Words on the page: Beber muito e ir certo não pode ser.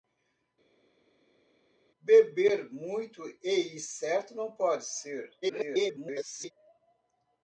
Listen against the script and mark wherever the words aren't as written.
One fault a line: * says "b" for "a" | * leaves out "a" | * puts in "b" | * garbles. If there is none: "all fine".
* garbles